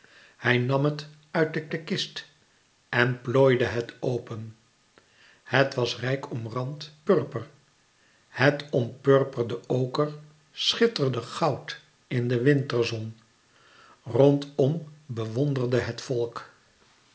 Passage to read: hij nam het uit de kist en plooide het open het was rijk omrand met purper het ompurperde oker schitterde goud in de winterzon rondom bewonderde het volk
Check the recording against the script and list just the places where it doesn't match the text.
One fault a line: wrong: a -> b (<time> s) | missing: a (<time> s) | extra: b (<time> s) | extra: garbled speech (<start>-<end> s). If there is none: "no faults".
extra: de (1.7 s)
missing: met (6.9 s)